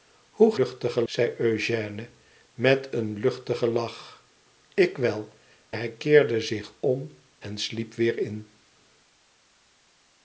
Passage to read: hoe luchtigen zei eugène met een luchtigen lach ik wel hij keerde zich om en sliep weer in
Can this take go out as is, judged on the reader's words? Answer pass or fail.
pass